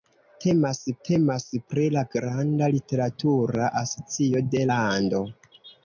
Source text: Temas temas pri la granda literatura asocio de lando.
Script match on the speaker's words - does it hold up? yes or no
yes